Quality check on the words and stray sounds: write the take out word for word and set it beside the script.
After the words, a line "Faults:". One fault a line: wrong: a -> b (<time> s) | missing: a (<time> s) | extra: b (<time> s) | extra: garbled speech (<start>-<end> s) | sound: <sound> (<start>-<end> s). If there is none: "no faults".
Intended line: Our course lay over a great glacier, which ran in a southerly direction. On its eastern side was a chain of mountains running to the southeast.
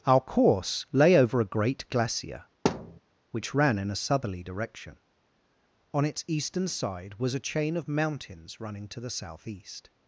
Our course lay over a great glacier, which ran in a southerly direction. On its eastern side was a chain of mountains running to the southeast.
Faults:
sound: thud (2.6-3.0 s)